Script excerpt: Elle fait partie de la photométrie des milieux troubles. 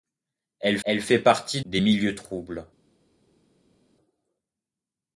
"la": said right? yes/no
no